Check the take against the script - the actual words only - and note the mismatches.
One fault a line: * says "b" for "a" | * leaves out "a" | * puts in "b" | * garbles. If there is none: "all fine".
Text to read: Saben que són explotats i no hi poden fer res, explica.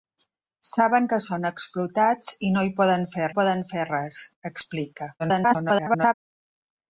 * puts in "poden fer"
* garbles